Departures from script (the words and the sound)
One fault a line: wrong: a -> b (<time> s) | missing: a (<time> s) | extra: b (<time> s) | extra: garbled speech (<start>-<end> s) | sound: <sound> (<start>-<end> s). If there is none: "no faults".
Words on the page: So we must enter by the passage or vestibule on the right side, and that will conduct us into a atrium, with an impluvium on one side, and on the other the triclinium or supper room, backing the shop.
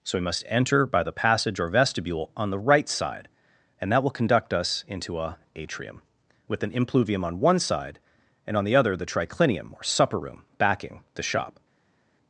no faults